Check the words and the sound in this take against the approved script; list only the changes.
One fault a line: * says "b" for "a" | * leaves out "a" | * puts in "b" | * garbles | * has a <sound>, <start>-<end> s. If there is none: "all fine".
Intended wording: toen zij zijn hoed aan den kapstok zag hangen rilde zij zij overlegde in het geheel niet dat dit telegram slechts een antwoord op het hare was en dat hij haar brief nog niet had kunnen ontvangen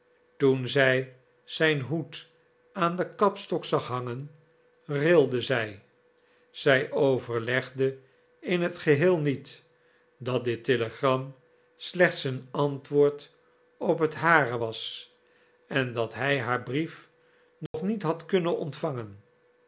* has a dropout, 17.7-17.7 s